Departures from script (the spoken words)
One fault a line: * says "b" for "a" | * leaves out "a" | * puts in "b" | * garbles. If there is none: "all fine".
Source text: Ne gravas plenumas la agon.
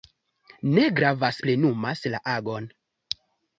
all fine